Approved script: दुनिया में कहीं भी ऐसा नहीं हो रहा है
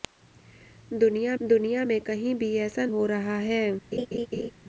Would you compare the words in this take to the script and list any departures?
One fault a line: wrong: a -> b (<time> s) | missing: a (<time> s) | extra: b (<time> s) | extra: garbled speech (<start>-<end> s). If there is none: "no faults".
extra: दुनिया (1.4 s)
missing: नहीं (2.8 s)